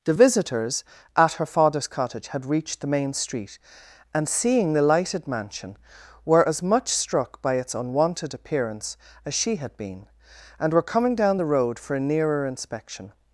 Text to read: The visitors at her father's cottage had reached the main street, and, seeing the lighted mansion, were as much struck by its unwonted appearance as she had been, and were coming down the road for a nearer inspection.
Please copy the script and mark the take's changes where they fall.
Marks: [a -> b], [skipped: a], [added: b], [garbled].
The visitors at her father's cottage had reached the main street, and, seeing the lighted mansion, were as much struck by its unwonted appearance as she had been, and were coming down the road for a nearer inspection.